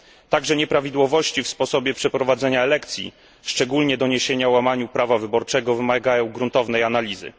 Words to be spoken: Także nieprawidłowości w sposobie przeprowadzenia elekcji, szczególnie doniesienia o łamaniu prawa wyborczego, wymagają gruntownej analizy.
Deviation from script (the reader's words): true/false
false